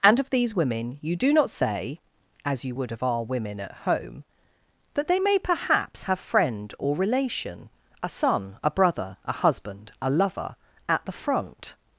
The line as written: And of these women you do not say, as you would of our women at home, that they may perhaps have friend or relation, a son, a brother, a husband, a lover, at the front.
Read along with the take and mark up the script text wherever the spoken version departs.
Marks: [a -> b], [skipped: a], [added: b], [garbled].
And of these women you do not say, as you would of our women at home, that they may perhaps have friend or relation, a son, a brother, a husband, a lover, at the front.